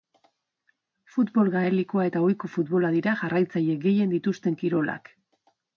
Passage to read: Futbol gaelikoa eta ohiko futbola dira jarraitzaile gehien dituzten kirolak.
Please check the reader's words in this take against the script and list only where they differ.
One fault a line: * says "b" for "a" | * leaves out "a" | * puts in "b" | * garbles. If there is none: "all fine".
all fine